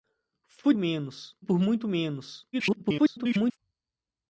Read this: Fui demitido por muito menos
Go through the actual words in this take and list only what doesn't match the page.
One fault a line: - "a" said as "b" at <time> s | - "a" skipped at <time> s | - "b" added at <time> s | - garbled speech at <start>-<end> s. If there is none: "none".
- "demitido" said as "menos" at 0.8 s
- garbled speech at 2.5-3.6 s